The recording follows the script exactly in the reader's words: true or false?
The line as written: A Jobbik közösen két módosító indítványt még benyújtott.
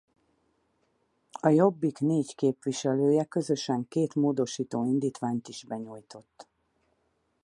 false